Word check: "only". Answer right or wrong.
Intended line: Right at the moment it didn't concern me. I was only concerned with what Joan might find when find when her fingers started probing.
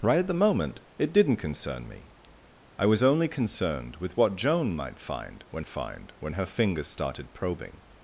right